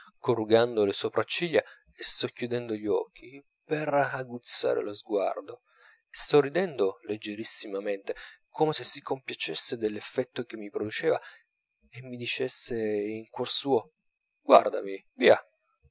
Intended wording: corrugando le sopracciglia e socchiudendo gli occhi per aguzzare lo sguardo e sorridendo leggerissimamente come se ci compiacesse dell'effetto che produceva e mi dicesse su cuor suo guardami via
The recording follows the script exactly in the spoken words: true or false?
false